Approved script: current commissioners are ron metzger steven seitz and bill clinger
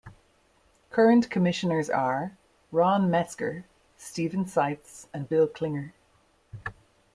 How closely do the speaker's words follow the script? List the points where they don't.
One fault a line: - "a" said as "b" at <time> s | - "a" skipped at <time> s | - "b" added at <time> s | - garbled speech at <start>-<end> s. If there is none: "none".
none